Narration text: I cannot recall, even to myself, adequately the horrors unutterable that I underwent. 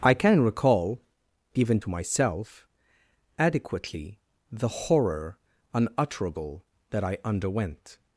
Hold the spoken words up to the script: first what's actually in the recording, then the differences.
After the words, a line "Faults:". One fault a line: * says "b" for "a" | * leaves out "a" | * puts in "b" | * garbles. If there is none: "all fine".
I can recall, even to myself, adequately the horror unutterable that I underwent.
Faults:
* says "can" for "cannot"
* says "horror" for "horrors"